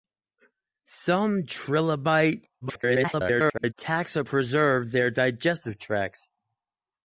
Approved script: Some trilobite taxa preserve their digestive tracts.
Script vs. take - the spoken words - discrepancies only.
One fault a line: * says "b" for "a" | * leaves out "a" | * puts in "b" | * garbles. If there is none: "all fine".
* garbles